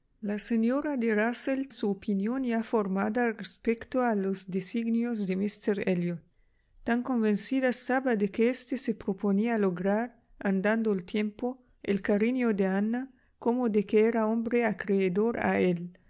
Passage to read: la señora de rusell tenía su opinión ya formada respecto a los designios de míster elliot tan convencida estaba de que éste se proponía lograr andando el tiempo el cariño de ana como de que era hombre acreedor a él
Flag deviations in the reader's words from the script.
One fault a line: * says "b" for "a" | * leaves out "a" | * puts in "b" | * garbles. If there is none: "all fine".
* leaves out "tenía"